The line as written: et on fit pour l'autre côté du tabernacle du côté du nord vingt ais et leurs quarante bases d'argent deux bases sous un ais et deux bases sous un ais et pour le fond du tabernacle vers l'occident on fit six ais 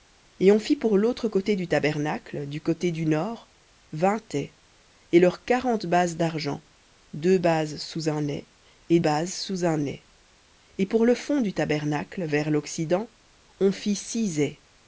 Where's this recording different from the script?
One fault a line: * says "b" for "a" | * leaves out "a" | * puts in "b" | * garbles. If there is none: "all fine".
* leaves out "deux"